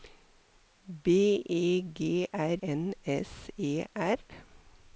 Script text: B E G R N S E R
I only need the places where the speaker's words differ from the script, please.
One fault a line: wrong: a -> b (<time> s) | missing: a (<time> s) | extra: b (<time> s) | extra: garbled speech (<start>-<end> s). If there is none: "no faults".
no faults